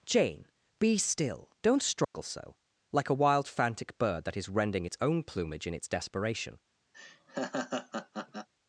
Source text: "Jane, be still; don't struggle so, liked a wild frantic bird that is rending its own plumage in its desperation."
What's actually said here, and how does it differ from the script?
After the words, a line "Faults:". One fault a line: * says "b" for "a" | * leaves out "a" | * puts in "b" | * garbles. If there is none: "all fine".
"Jane, be still; don't struggle so, like a wild frantic bird that is rending its own plumage in its desperation."
Faults:
* says "like" for "liked"